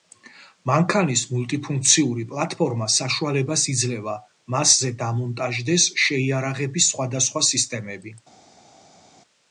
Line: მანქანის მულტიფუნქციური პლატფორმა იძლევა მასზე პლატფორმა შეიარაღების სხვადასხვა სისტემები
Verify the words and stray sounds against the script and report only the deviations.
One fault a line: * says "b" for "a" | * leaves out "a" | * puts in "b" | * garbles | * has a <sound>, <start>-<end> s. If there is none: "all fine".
* puts in "საშუალებას"
* says "დამონტაჟდეს" for "პლატფორმა"